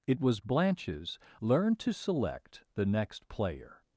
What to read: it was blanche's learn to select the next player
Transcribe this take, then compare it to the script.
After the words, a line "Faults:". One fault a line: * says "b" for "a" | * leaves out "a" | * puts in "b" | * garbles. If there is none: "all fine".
it was blanche's learn to select the next player
Faults:
all fine